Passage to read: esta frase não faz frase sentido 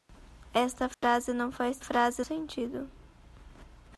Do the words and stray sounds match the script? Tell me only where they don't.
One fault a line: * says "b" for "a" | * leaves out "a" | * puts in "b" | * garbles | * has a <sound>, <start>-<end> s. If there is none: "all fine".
* has a dropout, 0.9-1.0 s